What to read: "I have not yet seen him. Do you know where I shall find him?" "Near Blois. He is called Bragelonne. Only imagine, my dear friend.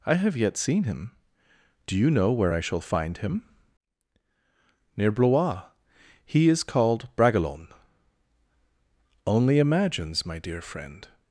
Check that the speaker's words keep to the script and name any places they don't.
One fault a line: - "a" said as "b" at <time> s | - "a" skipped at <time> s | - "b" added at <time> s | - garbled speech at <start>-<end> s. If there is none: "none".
- "not" skipped at 0.3 s
- "imagine" said as "imagines" at 9.6 s